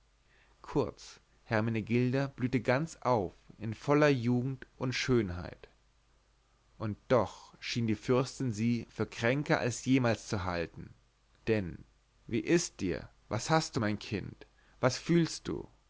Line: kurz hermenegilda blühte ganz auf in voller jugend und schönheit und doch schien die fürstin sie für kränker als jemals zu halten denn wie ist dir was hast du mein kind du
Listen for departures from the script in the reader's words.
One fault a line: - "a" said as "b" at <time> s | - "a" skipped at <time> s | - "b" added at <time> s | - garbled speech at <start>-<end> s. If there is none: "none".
- "was fühlst" added at 14.8 s